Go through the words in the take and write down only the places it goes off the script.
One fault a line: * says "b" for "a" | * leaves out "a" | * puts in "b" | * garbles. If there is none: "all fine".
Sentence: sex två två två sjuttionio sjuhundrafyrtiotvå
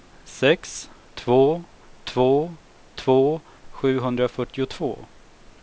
* leaves out "sjuttionio"